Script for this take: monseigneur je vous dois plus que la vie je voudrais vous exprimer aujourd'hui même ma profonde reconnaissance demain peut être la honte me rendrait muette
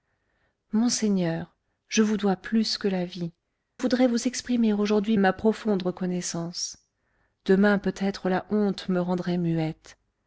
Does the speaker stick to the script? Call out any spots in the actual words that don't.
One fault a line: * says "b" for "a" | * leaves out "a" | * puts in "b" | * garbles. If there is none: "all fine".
* leaves out "je"
* leaves out "même"